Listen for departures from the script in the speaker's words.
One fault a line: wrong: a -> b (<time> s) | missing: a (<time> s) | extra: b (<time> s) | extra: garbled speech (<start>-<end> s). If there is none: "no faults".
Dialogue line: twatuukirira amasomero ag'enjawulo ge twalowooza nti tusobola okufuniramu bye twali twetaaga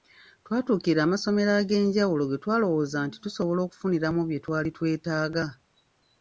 no faults